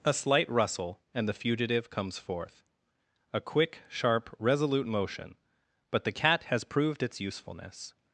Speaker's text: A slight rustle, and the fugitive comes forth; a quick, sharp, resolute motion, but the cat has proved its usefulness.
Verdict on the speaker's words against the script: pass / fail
pass